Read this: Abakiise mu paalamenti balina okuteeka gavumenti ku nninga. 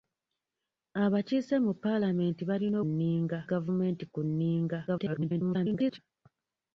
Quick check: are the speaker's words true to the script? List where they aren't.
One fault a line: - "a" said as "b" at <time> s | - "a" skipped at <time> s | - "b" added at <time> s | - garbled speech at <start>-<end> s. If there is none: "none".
- "okuteeka" said as "nninga" at 2.9 s
- garbled speech at 4.9-6.0 s